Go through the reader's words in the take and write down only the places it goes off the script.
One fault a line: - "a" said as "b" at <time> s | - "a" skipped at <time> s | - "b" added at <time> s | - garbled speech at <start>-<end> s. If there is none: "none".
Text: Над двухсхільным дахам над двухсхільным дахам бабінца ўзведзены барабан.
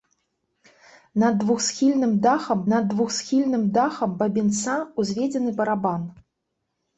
none